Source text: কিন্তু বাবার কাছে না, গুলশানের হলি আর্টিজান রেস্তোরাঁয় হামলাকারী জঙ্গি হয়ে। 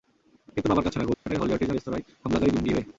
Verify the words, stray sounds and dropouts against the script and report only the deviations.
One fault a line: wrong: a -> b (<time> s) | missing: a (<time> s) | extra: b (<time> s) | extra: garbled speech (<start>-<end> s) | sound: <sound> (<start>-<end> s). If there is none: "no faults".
sound: dropout (1.1-1.3 s)